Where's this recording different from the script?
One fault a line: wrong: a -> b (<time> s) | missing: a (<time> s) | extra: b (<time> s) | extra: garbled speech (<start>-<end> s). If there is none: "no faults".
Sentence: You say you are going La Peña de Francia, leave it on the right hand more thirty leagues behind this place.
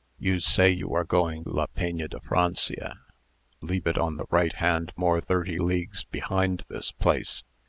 no faults